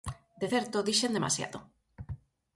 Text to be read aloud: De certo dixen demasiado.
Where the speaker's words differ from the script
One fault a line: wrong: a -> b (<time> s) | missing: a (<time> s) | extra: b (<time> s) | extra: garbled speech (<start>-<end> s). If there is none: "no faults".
no faults